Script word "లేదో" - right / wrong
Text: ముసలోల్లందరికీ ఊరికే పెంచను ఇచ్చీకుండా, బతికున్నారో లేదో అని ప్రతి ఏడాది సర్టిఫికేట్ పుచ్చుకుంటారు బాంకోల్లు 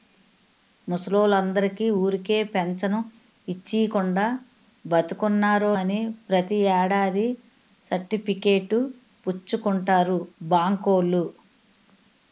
wrong